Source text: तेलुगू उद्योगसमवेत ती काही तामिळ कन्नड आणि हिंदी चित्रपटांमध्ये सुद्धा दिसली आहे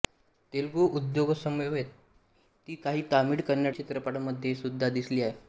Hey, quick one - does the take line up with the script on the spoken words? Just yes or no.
no